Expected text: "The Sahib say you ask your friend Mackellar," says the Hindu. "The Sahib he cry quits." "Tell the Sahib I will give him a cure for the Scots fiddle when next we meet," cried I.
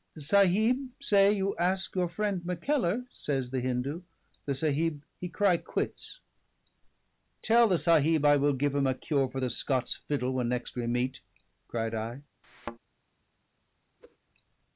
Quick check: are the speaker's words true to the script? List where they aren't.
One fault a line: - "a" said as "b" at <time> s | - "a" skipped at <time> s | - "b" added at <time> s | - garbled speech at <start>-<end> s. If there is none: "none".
none